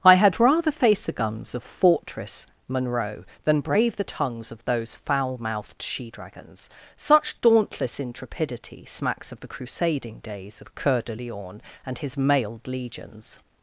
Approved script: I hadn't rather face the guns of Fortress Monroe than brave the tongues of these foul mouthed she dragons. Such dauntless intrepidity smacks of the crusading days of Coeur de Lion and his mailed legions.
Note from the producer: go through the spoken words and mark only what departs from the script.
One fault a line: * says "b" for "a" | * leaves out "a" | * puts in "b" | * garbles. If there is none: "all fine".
* says "had" for "hadn't"
* says "those" for "these"